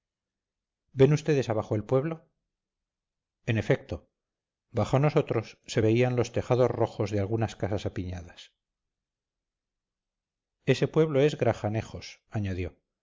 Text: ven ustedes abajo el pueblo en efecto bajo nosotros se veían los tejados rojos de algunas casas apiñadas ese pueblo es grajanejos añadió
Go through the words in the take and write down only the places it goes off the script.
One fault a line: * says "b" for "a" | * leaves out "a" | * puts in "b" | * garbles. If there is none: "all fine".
all fine